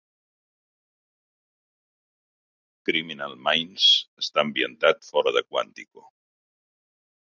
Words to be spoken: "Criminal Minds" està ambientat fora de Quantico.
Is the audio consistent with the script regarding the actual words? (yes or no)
yes